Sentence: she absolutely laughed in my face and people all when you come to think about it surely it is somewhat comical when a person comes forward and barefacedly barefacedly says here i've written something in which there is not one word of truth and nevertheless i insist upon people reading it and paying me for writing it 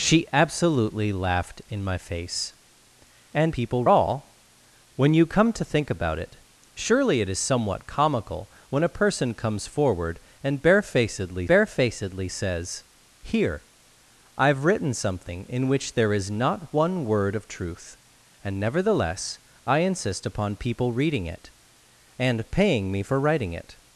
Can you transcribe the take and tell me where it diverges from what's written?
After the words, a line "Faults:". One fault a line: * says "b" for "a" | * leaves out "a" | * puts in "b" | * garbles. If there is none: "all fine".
she absolutely laughed in my face and people all when you come to think about it surely it is somewhat comical when a person comes forward and barefacedly barefacedly says here i've written something in which there is not one word of truth and nevertheless i insist upon people reading it and paying me for writing it
Faults:
all fine